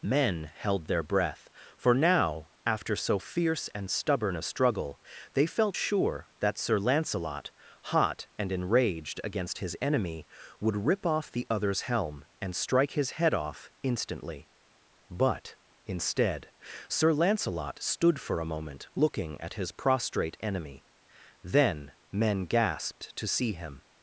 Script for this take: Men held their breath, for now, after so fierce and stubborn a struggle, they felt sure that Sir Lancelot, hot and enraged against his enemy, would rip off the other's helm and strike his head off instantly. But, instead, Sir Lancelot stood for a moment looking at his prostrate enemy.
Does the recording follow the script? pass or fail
fail